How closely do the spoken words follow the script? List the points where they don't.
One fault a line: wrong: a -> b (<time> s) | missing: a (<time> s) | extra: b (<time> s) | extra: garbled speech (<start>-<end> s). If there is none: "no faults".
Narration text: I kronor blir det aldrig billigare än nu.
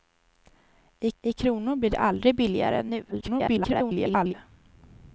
extra: I (1.2 s)
extra: garbled speech (3.1-4.3 s)